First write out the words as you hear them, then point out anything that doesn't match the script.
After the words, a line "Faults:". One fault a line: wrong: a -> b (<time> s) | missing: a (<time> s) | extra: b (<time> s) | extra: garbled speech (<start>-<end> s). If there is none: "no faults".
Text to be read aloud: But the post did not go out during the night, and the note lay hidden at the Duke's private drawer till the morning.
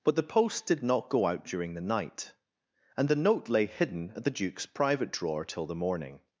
But the post did not go out during the night, and the note lay hidden at the Duke's private drawer till the morning.
Faults:
no faults